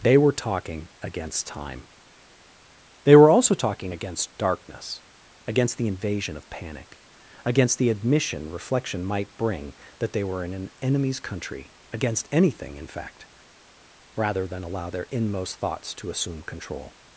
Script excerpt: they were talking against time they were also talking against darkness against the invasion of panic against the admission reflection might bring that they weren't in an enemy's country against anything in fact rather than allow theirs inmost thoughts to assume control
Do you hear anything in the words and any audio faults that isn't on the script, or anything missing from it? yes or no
yes